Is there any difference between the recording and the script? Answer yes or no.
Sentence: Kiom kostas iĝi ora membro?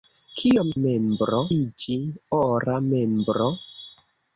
yes